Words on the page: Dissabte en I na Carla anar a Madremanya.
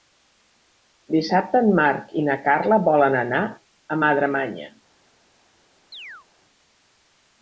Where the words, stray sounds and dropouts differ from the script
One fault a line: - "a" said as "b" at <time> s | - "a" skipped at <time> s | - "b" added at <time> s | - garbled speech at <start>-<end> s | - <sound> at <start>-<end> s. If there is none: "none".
- "Marc" added at 1.8 s
- "volen" added at 2.9 s
- chirp at 5.9-6.3 s